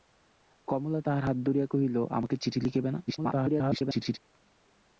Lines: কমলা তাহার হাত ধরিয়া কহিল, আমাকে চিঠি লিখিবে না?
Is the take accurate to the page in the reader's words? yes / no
no